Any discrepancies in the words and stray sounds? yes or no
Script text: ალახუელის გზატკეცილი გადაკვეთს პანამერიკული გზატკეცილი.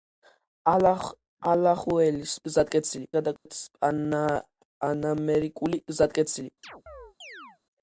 yes